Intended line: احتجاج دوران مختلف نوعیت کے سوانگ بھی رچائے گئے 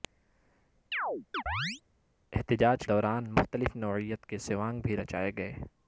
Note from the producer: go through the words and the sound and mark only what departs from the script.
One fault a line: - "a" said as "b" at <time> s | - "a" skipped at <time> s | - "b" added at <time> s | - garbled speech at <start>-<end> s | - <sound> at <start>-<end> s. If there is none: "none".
- chirp at 0.9-1.8 s